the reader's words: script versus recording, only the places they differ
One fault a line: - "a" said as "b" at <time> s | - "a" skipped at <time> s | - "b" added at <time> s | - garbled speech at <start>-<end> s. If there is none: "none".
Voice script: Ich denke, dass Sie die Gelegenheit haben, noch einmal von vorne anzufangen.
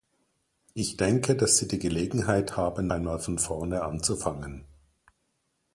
- "noch" skipped at 2.9 s